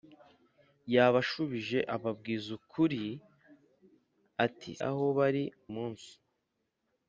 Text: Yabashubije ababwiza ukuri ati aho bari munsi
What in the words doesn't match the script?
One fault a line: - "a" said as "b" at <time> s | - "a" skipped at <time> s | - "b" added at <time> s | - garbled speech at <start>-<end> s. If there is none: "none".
none